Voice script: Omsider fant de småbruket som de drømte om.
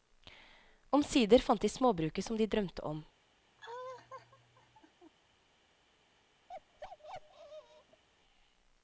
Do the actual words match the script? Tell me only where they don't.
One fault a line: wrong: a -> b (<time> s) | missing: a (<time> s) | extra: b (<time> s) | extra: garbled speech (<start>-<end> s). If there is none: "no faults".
no faults